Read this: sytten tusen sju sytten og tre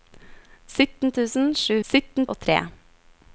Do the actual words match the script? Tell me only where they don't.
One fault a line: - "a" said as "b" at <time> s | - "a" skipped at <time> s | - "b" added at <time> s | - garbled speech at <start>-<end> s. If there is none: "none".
none